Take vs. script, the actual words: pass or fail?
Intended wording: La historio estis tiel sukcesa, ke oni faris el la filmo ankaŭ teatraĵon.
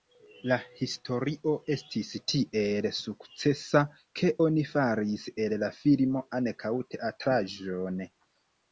pass